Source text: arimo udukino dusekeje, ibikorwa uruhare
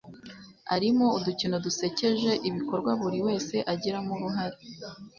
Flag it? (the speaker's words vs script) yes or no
yes